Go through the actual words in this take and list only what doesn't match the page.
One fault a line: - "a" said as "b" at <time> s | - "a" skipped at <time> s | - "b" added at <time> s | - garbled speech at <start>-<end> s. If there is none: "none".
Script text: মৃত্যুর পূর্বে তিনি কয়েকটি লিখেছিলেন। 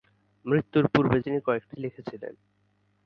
none